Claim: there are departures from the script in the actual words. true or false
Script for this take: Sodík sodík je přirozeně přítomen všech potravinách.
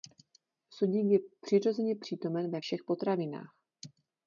true